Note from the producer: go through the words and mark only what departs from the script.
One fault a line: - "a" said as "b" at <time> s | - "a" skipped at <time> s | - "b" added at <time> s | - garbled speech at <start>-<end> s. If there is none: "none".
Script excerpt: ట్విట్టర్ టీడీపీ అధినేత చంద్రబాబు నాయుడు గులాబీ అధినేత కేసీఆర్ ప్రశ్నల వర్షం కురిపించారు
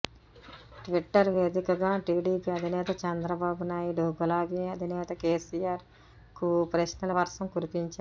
- "వేదికగా" added at 1.3 s
- "కు" added at 6.4 s